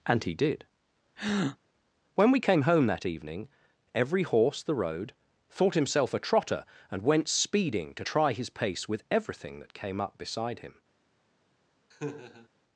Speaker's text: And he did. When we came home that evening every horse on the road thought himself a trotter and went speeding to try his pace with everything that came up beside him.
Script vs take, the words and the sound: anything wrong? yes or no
yes